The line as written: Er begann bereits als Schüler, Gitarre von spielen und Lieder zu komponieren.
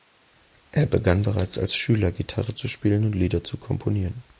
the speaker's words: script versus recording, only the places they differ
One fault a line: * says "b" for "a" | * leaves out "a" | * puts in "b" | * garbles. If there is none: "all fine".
* says "zu" for "von"